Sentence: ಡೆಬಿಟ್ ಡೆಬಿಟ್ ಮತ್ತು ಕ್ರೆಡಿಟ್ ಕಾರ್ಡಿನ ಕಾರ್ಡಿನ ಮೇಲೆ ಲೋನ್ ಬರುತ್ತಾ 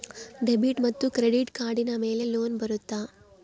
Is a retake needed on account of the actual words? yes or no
yes